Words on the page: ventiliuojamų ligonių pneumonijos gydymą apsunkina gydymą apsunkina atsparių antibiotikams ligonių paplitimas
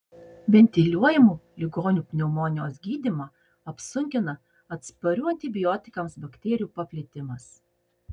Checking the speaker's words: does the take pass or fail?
fail